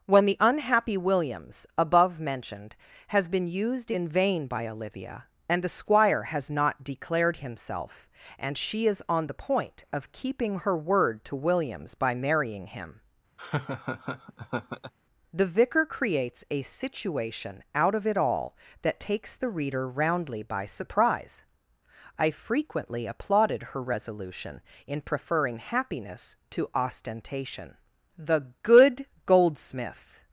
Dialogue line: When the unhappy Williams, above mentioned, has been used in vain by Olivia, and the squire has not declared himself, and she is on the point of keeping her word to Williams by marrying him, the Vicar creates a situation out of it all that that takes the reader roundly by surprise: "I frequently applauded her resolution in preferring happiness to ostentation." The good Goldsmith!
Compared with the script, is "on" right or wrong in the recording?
right